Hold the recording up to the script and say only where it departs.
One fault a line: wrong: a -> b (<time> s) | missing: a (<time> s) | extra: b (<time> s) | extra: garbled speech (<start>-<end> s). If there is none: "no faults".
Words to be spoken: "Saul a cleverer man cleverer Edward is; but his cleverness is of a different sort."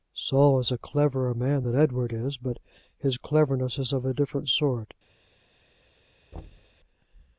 extra: is (0.6 s)
wrong: cleverer -> than (1.6 s)